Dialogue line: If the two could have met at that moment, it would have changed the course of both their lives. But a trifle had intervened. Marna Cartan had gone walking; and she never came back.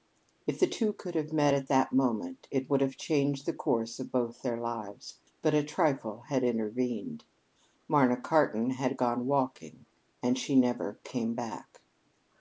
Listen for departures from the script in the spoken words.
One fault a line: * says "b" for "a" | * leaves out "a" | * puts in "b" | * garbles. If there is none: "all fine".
all fine